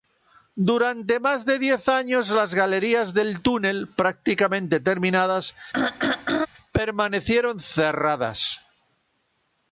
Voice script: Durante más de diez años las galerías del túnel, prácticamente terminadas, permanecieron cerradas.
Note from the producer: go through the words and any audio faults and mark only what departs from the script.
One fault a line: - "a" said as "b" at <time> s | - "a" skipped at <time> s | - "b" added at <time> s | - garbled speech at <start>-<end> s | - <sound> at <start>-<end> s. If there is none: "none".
- throat clearing at 5.7-6.5 s